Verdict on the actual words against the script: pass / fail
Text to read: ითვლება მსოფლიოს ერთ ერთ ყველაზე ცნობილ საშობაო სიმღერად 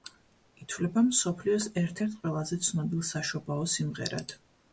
pass